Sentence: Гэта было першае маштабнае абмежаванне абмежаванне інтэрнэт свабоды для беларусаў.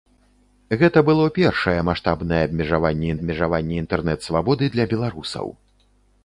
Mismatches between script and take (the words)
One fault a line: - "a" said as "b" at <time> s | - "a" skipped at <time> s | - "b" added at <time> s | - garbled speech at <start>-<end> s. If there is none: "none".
none